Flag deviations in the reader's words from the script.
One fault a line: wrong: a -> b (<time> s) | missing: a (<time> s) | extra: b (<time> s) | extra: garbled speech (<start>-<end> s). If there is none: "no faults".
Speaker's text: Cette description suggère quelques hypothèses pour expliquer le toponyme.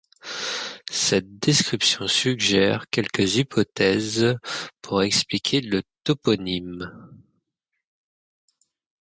no faults